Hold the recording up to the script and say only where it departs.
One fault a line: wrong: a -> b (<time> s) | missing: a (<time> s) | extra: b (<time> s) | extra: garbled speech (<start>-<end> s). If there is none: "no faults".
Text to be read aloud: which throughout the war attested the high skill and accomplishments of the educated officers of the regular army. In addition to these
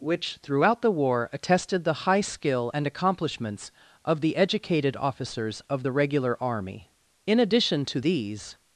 no faults